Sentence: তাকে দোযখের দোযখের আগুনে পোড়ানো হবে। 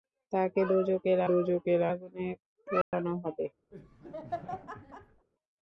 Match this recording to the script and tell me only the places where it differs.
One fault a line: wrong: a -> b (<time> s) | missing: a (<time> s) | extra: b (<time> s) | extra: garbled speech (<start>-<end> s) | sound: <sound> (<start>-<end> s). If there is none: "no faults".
sound: dropout (2.8-2.9 s)
sound: laugh (3.7-5.3 s)